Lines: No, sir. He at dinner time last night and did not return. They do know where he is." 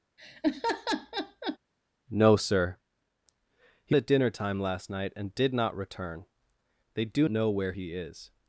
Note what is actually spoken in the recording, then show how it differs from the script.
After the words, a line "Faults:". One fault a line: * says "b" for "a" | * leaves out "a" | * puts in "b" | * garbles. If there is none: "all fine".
No, sir. He at dinner time last night and did not return. They do know where he is."
Faults:
all fine